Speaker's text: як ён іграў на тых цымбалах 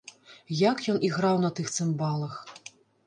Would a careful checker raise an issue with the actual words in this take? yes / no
no